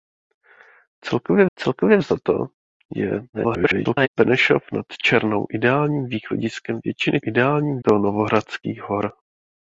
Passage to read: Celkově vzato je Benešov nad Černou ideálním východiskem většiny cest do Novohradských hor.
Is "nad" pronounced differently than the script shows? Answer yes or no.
no